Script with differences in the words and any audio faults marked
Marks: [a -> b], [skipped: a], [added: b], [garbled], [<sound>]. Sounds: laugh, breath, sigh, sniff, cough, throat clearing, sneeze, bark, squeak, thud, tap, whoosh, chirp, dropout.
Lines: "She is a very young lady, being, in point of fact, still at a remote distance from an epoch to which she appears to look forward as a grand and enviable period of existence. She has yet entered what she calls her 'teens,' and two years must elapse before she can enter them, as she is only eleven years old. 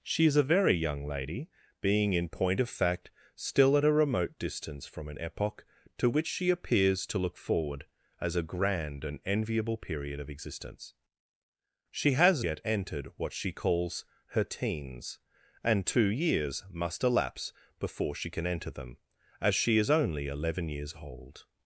"She is a very young lady, being, in point of fact, still at a remote distance from an epoch to which she appears to look forward as a grand and enviable period of existence. She has yet entered what she calls her 'teens,' and two years must elapse before she can enter them, as she is only eleven years old.